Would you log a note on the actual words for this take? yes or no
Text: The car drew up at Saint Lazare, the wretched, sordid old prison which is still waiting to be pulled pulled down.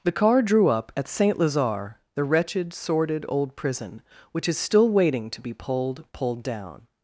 no